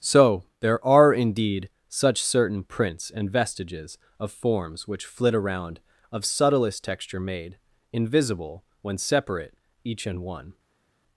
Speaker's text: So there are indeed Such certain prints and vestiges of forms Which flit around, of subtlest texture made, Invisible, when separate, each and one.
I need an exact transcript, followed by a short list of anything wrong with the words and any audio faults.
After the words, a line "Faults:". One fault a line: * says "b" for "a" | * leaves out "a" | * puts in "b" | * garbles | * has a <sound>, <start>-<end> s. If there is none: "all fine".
So there are indeed Such certain prints and vestiges of forms Which flit around, of subtlest texture made, Invisible, when separate, each and one.
Faults:
all fine